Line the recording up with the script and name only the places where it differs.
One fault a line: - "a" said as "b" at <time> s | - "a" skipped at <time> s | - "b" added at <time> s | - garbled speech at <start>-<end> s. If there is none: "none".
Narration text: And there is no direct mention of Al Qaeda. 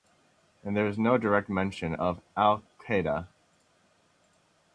none